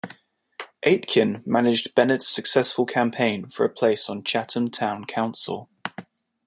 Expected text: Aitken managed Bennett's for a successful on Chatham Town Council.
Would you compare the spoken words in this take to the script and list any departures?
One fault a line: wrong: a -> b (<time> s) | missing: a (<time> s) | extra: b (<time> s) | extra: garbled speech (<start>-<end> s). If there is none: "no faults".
extra: successful campaign (2.3 s)
wrong: successful -> place (3.7 s)